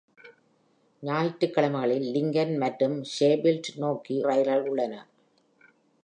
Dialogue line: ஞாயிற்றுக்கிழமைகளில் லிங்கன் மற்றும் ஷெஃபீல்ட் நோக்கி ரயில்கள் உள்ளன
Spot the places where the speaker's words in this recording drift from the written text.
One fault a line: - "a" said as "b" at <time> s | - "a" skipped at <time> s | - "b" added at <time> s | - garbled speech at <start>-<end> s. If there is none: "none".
none